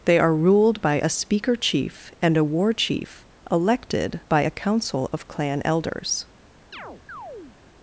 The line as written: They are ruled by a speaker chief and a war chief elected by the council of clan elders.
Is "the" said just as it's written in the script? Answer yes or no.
no